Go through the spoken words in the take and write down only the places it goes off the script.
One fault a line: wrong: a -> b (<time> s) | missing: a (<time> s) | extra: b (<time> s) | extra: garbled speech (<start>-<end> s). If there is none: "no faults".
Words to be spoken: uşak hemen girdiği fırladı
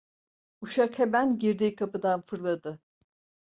extra: kapıdan (1.8 s)